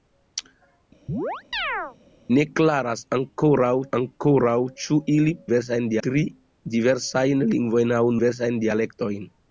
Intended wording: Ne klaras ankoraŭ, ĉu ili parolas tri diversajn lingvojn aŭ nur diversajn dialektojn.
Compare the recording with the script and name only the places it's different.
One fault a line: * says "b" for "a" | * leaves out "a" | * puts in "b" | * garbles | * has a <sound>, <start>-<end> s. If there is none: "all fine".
* has a chirp, 1.1-2.0 s
* puts in "ankoraŭ"
* says "diversajn" for "parolas"
* leaves out "nur"